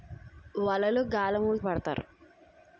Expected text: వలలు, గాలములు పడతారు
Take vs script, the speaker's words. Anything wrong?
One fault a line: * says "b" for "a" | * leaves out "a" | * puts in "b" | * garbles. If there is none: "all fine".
all fine